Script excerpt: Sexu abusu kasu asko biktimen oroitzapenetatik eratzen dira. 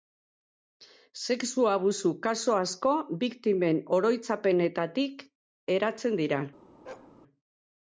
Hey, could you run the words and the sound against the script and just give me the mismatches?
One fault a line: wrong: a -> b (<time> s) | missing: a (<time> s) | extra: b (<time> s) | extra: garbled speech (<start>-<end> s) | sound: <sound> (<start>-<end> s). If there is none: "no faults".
sound: bark (6.8-7.1 s)